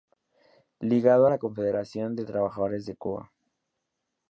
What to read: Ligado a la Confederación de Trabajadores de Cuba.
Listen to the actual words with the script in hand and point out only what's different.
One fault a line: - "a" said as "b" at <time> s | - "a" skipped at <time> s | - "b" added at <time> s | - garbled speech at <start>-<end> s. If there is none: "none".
none